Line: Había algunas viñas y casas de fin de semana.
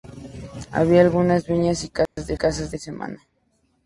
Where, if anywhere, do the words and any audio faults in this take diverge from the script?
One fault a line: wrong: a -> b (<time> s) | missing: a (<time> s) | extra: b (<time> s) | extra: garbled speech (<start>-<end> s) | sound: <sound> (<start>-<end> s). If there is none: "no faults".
sound: dropout (2.1-2.2 s)
wrong: fin -> casas (2.3 s)